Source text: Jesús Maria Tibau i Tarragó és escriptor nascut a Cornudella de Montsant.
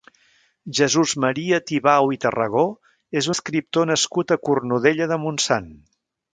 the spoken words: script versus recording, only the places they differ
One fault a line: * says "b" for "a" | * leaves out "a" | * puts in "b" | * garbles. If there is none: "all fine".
all fine